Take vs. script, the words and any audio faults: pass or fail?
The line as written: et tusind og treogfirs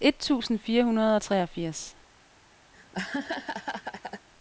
fail